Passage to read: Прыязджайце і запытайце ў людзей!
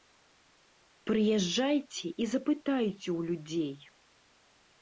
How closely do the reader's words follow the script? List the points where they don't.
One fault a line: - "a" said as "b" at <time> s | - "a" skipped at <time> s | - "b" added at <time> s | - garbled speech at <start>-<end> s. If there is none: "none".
none